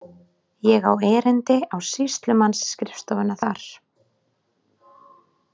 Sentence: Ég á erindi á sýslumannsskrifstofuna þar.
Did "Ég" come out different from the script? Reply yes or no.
no